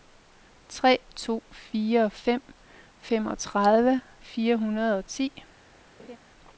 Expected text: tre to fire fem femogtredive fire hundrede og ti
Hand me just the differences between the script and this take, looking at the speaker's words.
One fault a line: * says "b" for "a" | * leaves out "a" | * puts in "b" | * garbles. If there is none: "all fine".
all fine